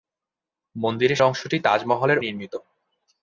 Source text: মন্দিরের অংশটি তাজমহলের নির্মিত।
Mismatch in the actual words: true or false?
false